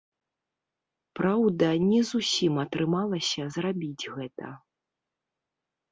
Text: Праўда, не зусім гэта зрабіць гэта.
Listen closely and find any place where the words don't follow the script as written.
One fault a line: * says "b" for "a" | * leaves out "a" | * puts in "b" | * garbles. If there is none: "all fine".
* says "атрымалася" for "гэта"